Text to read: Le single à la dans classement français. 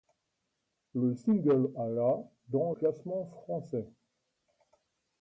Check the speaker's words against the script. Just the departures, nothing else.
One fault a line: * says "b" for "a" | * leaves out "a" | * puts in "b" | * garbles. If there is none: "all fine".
all fine